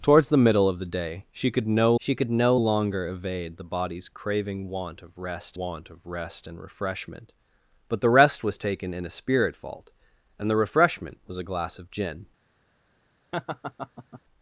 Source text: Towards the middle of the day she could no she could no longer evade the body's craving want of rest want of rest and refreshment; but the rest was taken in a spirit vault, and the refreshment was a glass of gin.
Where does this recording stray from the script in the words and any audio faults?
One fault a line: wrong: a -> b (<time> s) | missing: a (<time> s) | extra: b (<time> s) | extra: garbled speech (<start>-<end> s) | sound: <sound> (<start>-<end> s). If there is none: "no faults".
sound: laugh (13.3-14.2 s)